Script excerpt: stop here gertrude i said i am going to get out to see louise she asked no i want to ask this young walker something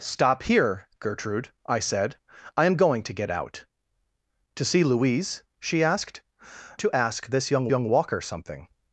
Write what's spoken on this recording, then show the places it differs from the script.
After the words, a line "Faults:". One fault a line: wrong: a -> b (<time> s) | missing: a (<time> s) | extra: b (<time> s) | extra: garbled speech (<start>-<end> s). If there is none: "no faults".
stop here gertrude i said i am going to get out to see louise she asked to ask this young young walker something
Faults:
missing: no i want (6.2 s)
extra: young (7.7 s)